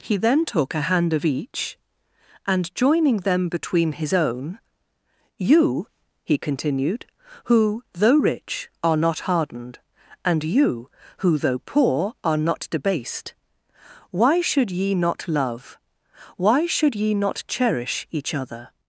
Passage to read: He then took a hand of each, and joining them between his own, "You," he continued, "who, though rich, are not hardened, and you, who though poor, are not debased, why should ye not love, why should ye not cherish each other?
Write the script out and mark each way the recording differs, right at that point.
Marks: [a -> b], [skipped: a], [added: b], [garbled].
He then took a hand of each, and joining them between his own, "You," he continued, "who, though rich, are not hardened, and you, who though poor, are not debased, why should ye not love, why should ye not cherish each other?